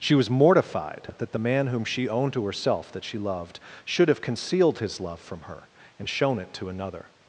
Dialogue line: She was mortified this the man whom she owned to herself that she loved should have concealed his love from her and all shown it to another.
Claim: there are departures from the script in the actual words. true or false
true